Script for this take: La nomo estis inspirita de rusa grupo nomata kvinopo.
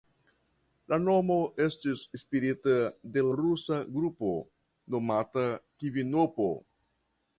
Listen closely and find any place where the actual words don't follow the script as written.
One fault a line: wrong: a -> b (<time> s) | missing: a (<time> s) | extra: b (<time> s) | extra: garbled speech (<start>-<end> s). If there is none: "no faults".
no faults